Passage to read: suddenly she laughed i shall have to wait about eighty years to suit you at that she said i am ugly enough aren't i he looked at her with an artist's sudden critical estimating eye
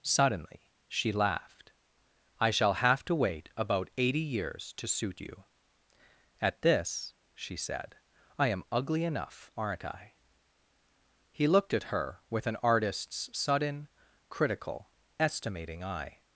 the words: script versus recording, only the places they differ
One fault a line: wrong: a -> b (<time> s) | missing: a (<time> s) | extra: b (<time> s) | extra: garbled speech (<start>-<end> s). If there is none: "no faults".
wrong: that -> this (6.6 s)